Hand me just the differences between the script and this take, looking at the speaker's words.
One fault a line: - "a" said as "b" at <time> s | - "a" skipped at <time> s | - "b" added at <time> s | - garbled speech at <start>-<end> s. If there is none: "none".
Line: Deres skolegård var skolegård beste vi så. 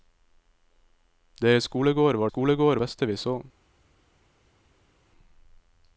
none